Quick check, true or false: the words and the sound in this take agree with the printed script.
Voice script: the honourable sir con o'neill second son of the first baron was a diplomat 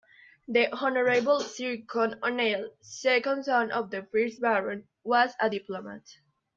true